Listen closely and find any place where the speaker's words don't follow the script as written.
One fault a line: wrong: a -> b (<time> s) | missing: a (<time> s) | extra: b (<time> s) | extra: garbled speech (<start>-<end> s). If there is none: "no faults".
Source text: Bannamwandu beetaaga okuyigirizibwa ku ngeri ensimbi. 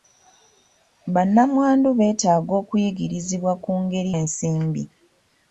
no faults